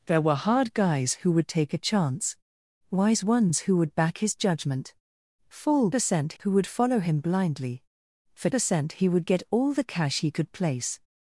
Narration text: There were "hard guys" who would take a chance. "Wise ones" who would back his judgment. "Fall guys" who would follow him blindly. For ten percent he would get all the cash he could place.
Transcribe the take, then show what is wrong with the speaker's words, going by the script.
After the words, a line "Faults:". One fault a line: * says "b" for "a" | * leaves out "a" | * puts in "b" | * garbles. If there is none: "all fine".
There were "hard guys" who would take a chance. "Wise ones" who would back his judgment. "Fall percent" who would follow him blindly. For percent he would get all the cash he could place.
Faults:
* says "percent" for "guys"
* leaves out "ten"